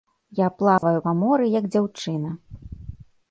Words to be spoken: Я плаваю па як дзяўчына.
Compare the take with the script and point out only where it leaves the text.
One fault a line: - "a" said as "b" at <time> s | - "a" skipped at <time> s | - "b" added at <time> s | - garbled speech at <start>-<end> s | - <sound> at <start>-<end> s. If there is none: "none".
- dropout at 0.8-0.8 s
- "моры" added at 1.2 s